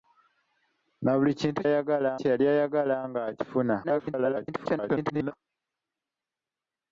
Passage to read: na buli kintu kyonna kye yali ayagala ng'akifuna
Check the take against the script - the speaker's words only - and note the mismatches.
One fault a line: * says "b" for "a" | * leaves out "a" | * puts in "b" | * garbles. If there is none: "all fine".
* says "ayagala" for "kyonna"
* garbles